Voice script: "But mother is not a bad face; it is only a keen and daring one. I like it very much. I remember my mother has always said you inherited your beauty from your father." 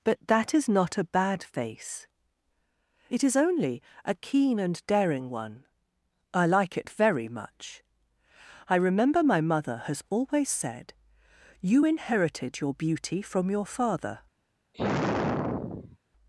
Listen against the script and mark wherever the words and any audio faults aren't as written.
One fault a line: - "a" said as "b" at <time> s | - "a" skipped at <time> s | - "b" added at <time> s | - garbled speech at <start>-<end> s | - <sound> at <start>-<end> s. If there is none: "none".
- "mother" said as "that" at 0.3 s
- sigh at 14.7-16.0 s